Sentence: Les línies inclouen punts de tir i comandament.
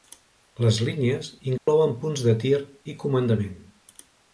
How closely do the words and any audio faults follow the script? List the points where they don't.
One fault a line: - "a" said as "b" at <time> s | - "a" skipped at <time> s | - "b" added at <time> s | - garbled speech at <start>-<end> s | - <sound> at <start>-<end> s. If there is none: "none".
- dropout at 1.6-1.7 s